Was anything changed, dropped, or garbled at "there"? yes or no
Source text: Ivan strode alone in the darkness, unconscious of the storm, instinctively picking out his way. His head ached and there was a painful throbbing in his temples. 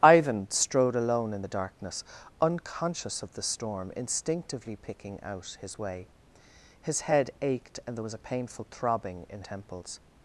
no